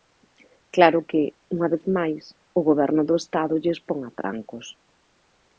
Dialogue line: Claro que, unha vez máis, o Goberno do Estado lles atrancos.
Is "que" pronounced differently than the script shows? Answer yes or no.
no